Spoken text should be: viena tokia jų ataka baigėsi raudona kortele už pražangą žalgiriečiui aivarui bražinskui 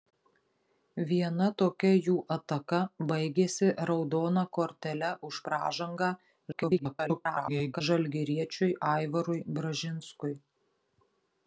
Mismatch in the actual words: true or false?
true